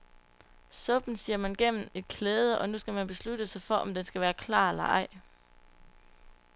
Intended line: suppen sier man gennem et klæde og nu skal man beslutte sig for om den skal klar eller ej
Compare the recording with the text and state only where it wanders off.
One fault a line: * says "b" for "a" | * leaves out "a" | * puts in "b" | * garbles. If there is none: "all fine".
* puts in "være"